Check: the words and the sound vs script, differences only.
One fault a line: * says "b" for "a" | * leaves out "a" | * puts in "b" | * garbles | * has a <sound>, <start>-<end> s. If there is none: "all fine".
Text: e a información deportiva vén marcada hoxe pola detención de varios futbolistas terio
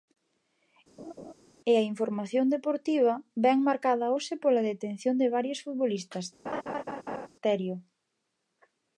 * has a laugh, 1.0-1.3 s
* has a laugh, 6.5-7.3 s